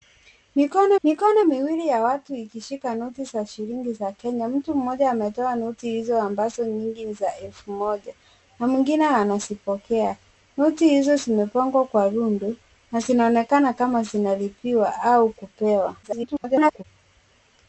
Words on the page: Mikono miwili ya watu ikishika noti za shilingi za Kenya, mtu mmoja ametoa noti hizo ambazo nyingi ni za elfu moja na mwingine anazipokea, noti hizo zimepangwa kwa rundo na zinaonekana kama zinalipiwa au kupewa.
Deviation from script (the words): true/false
true